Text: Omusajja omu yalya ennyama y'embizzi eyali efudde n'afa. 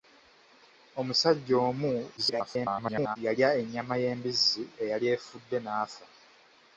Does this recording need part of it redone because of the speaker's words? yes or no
yes